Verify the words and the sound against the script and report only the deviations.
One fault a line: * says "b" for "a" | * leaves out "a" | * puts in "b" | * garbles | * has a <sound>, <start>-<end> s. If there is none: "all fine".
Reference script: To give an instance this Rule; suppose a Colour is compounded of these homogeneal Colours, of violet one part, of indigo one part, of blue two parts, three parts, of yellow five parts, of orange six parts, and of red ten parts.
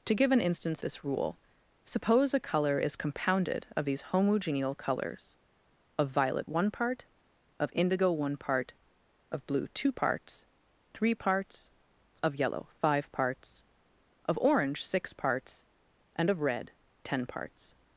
all fine